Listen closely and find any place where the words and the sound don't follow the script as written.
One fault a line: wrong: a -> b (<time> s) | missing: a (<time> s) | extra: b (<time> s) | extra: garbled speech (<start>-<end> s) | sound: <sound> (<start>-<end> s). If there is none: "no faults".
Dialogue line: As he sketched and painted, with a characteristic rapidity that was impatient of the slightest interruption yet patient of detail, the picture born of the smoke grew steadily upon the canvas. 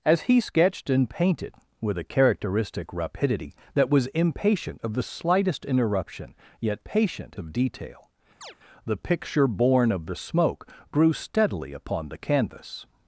sound: chirp (8.4-8.6 s)